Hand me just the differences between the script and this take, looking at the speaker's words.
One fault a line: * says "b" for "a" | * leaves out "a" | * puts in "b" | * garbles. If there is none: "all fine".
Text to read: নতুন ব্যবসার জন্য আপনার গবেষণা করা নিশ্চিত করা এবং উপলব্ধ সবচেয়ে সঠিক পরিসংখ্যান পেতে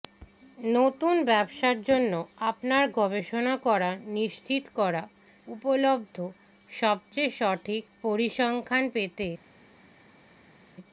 * leaves out "এবং"